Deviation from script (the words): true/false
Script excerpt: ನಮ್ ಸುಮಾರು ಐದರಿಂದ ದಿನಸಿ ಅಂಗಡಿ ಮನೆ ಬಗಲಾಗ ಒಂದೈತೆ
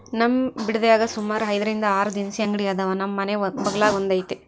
true